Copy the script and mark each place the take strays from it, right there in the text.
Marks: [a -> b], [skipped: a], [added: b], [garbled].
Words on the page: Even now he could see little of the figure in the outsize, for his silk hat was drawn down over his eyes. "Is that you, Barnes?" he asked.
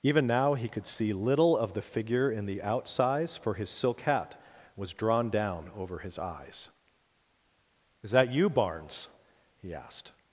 Even now he could see little of the figure in the outsize, for his silk hat was drawn down over his eyes. "Is that you, Barnes?" he asked.